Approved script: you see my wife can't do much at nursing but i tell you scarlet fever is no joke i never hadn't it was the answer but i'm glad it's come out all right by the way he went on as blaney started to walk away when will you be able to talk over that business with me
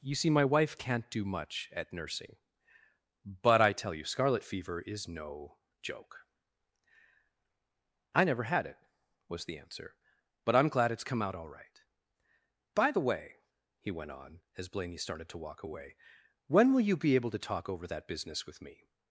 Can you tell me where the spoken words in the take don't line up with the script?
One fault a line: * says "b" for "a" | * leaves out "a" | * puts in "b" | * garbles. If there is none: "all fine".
* says "had" for "hadn't"